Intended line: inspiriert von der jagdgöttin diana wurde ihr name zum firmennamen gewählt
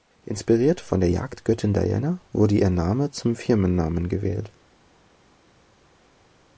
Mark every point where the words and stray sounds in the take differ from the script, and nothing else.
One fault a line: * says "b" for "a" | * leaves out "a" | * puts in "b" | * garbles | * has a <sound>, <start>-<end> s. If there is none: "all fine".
all fine